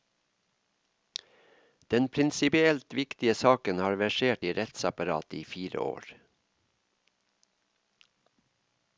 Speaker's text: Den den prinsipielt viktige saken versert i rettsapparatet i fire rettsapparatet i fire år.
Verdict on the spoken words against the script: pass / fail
fail